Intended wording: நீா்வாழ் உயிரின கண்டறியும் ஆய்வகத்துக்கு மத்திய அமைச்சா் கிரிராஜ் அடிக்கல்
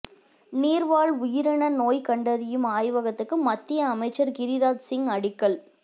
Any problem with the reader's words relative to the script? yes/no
yes